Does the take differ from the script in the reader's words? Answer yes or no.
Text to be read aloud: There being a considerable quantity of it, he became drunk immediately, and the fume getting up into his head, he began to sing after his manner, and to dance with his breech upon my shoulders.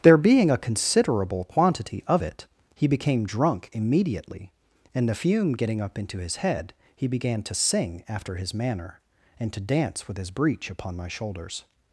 no